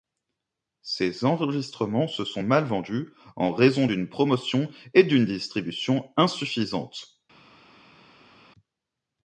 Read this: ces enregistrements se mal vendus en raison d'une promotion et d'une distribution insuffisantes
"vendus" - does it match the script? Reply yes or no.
yes